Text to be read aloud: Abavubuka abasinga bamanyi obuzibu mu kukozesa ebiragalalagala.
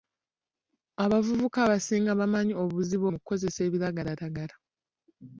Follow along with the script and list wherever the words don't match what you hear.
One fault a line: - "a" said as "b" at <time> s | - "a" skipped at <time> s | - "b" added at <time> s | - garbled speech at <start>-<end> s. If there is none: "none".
none